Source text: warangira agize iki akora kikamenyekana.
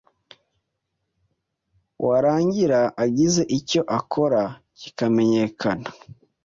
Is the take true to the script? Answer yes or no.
no